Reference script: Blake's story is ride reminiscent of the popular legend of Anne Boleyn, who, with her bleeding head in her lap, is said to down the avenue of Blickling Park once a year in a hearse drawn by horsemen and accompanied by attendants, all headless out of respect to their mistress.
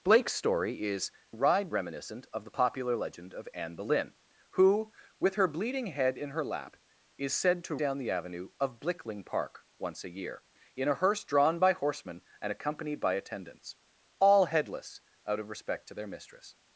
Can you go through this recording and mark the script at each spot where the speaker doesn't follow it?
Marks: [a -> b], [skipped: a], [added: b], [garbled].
Blake's story is ride reminiscent of the popular legend of Anne Boleyn, who, with her bleeding head in her lap, is said to down the avenue of Blickling Park once a year in a hearse drawn by horsemen and accompanied by attendants, all headless out of respect to their mistress.